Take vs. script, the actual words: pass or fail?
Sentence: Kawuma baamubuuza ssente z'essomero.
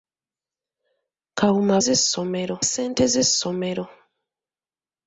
fail